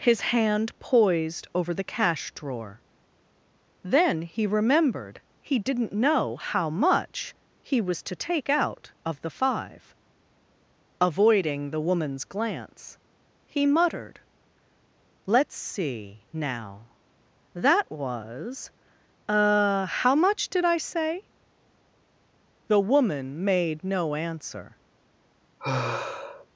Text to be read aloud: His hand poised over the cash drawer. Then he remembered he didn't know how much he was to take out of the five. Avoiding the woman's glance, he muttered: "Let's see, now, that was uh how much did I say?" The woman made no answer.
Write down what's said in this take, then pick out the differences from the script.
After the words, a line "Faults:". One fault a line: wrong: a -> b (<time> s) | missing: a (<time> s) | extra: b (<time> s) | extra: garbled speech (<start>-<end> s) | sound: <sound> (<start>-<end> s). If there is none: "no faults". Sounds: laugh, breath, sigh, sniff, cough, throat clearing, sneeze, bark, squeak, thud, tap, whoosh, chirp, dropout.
His hand poised over the cash drawer. Then he remembered he didn't know how much he was to take out of the five. Avoiding the woman's glance, he muttered: "Let's see, now, that was uh how much did I say?" The woman made no answer.
Faults:
sound: sigh (25.6-26.5 s)